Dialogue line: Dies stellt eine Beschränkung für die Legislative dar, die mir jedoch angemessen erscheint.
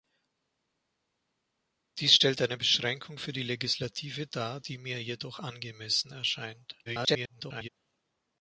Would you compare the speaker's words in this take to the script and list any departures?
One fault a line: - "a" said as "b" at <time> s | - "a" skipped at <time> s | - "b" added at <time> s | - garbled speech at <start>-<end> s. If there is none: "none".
- garbled speech at 6.9-7.7 s